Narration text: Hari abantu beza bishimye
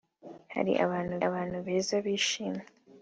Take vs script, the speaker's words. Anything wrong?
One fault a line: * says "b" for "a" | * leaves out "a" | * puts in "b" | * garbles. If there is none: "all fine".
* puts in "abantu"